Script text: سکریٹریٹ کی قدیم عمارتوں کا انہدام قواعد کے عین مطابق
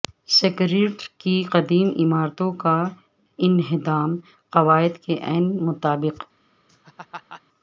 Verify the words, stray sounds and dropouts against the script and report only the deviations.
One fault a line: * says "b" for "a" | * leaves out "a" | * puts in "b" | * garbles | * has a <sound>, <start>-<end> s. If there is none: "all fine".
* has a laugh, 6.7-7.4 s